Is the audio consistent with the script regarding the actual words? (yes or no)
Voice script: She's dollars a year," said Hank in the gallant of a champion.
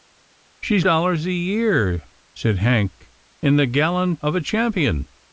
yes